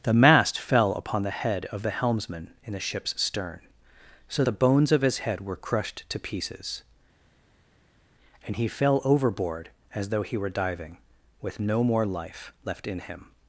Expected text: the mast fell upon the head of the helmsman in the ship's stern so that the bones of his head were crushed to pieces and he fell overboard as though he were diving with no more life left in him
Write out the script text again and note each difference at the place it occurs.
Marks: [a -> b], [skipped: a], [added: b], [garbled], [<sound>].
the mast fell upon the head of the helmsman in the ship's stern so [skipped: that] the bones of his head were crushed to pieces and he fell overboard as though he were diving with no more life left in him